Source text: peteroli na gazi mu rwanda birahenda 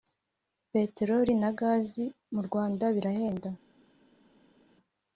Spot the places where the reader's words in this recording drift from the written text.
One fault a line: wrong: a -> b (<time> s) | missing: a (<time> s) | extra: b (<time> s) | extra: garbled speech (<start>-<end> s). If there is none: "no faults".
no faults